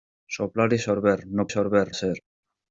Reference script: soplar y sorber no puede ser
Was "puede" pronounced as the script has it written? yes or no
no